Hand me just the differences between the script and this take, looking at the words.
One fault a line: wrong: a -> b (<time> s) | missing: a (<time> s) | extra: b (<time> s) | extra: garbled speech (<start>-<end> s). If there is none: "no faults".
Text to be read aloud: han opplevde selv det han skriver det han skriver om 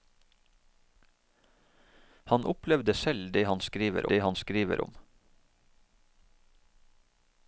no faults